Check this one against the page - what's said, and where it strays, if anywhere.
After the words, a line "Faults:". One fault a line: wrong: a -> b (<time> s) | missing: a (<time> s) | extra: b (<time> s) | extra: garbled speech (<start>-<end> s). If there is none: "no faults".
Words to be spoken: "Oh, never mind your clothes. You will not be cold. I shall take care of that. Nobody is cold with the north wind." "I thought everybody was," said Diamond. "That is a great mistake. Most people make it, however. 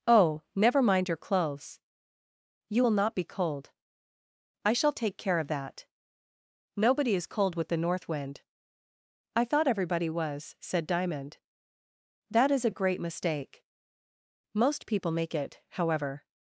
"Oh, never mind your clothes. You will not be cold. I shall take care of that. Nobody is cold with the north wind." "I thought everybody was," said Diamond. "That is a great mistake. Most people make it, however.
Faults:
no faults